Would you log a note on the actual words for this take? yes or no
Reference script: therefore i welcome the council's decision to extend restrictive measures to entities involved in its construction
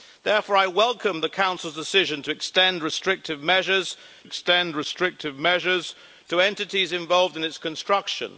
yes